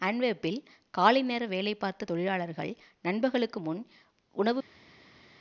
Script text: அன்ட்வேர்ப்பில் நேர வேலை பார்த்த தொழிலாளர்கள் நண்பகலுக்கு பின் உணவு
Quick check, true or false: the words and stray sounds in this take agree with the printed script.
false